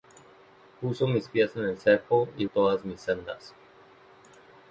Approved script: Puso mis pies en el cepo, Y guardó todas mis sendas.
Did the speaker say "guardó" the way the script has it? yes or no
no